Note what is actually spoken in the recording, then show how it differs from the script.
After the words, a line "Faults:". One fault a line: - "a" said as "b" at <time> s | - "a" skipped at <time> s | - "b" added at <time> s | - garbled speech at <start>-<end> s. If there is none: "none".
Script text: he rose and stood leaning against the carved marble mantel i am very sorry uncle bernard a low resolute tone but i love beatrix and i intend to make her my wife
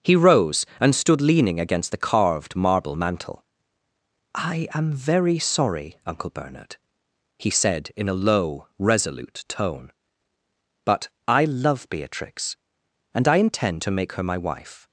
he rose and stood leaning against the carved marble mantel i am very sorry uncle bernard he said in a low resolute tone but i love beatrix and i intend to make her my wife
Faults:
- "he said in" added at 7.4 s